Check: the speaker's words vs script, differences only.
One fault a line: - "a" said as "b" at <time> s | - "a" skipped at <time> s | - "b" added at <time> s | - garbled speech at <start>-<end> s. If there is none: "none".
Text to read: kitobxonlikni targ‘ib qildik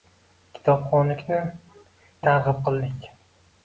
none